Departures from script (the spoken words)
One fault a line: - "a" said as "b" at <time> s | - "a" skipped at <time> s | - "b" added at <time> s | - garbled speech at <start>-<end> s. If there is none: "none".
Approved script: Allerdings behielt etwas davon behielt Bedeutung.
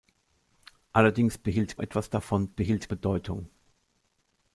none